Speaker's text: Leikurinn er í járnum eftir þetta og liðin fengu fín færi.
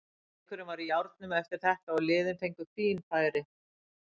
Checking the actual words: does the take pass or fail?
fail